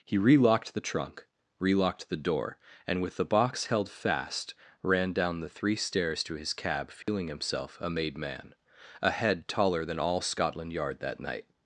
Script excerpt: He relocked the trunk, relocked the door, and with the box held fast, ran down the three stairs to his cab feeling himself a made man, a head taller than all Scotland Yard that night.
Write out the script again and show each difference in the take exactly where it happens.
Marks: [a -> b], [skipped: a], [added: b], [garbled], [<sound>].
He relocked the trunk, relocked the door, and with the box held fast, ran down the three stairs to his cab feeling [dropout] himself a made man, a head taller than all Scotland Yard that night.